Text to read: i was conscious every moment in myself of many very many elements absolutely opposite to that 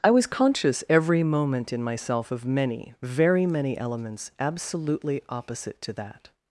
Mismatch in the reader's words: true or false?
false